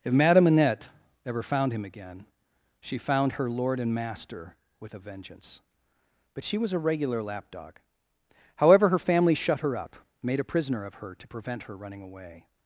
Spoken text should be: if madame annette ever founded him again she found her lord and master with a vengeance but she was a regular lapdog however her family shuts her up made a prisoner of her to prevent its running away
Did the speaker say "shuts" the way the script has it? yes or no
no